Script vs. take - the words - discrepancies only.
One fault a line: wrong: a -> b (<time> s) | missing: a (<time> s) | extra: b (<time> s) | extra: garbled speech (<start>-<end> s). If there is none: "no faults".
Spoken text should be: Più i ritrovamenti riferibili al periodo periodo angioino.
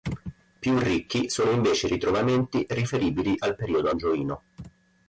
extra: ricchi sono invece (0.8 s)
missing: periodo (3.9 s)